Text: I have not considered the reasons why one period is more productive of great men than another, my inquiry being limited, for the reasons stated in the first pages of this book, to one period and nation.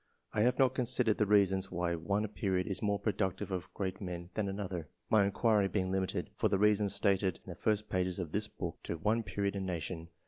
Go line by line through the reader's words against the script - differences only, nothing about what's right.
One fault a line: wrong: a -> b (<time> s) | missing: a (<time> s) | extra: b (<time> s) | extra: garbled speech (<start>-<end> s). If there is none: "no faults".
no faults